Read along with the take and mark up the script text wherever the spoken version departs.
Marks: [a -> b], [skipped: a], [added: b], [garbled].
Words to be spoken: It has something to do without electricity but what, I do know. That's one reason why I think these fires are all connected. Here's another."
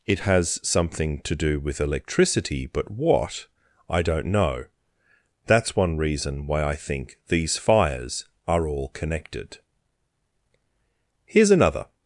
It has something to do [without -> with] electricity but what, I [do -> don't] know. That's one reason why I think these fires are all connected. Here's another."